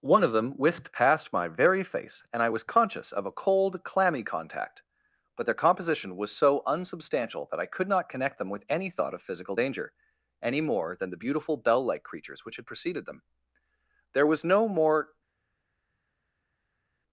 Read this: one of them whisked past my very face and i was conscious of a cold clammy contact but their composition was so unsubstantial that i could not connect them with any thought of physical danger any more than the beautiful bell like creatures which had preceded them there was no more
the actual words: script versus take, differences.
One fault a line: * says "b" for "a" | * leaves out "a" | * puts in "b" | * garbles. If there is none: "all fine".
all fine